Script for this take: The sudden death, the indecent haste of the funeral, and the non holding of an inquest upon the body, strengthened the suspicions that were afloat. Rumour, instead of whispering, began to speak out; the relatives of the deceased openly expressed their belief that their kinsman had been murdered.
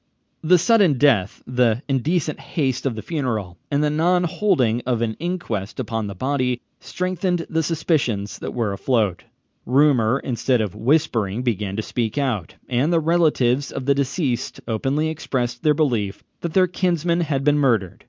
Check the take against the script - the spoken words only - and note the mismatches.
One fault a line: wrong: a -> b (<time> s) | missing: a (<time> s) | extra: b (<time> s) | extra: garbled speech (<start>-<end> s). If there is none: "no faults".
extra: and (12.7 s)